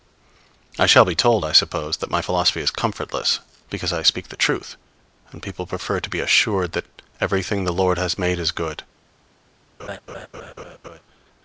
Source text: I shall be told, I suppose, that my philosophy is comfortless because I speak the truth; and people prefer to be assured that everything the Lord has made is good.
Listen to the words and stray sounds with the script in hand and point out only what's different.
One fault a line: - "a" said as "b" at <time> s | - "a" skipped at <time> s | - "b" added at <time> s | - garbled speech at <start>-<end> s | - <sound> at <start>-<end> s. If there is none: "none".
- laugh at 9.8-11.0 s